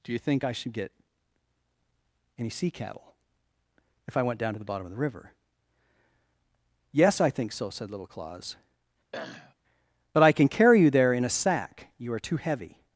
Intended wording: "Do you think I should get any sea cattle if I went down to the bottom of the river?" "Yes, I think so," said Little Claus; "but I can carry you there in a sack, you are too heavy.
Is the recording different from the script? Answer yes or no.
no